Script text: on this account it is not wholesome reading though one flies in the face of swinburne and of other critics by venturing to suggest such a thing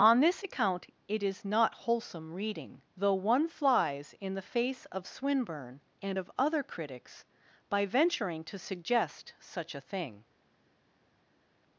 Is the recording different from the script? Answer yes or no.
no